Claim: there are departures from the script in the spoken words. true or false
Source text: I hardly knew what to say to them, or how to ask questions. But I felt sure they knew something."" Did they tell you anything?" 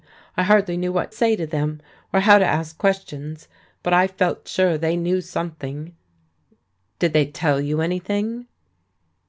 true